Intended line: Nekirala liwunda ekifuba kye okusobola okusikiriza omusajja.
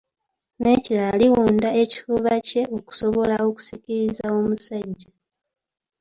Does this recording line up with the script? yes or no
yes